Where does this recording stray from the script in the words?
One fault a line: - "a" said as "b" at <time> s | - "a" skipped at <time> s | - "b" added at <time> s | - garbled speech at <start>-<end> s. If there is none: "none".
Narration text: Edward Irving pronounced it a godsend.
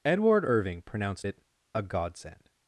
none